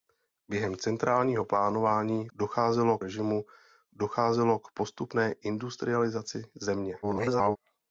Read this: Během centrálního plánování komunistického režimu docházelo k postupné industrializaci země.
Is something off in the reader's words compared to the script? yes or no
yes